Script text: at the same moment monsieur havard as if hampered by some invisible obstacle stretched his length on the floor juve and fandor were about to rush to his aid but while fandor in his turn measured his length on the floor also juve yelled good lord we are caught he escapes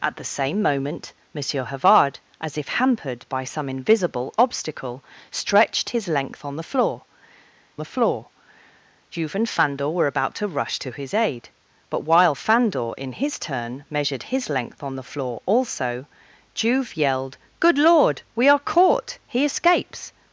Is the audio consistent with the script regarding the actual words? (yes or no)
no